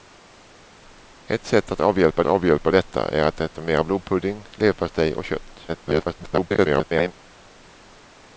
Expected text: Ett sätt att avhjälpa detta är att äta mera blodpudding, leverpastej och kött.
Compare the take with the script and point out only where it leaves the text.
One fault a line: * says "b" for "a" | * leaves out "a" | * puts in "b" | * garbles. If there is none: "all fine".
* puts in "avhjälpa"
* garbles